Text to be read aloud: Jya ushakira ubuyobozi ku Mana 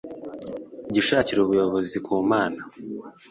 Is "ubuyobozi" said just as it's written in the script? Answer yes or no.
yes